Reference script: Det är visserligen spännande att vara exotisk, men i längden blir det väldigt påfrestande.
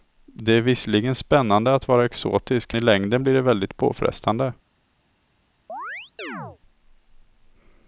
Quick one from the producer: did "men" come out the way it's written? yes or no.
no